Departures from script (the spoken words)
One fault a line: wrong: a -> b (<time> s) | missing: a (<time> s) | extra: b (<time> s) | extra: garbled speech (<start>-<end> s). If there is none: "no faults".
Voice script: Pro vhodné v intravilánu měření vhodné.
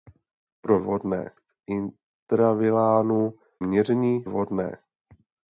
no faults